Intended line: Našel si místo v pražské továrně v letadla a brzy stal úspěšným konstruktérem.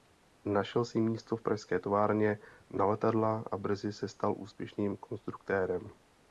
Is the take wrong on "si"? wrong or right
right